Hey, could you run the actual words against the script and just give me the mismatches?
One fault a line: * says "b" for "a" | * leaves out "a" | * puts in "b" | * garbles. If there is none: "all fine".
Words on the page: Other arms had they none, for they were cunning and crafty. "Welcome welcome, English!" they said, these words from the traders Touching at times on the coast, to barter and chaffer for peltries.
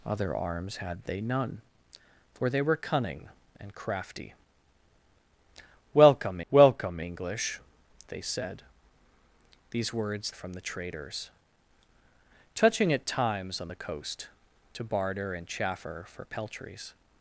all fine